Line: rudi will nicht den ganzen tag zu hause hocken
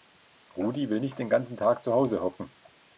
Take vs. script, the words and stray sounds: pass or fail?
pass